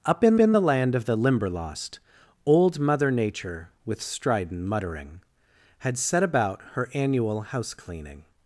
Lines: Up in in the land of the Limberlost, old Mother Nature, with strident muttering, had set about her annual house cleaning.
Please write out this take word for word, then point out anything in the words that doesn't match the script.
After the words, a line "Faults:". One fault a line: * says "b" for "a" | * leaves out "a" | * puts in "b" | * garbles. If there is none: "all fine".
Up in in the land of the Limberlost, old Mother Nature, with strident muttering, had set about her annual house cleaning.
Faults:
all fine